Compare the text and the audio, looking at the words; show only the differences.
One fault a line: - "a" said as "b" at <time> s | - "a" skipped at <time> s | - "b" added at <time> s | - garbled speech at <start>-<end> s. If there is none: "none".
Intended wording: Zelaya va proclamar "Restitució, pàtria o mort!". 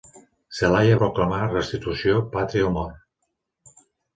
- "va" skipped at 0.9 s